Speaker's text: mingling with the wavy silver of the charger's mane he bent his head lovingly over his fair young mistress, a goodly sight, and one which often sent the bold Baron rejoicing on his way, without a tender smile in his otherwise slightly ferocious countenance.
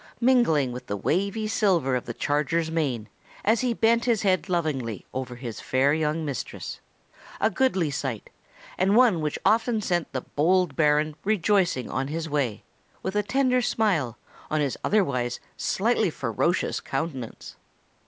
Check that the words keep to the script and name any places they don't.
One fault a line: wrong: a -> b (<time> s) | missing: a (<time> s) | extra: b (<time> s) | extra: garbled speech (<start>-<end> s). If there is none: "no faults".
extra: as (3.5 s)
wrong: without -> with (13.0 s)
wrong: in -> on (14.5 s)